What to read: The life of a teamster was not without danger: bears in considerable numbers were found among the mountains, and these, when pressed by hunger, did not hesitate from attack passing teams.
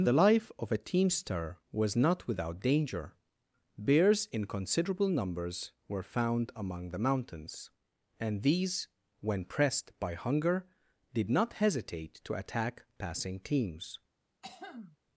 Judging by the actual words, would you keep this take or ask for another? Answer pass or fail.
fail